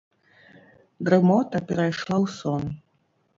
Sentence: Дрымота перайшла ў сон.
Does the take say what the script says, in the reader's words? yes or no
yes